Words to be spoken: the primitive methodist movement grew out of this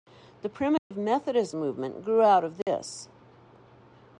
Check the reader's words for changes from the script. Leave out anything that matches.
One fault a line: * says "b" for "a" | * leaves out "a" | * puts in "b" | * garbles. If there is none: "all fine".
all fine